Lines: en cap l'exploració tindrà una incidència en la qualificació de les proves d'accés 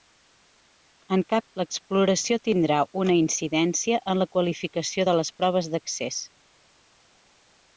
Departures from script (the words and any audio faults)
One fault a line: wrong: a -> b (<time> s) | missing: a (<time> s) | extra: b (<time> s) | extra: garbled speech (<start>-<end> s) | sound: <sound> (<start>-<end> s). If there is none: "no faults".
no faults